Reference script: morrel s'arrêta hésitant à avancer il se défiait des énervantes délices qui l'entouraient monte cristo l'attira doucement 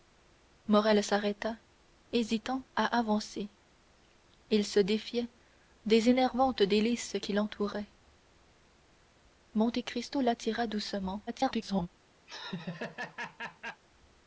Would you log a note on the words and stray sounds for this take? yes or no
yes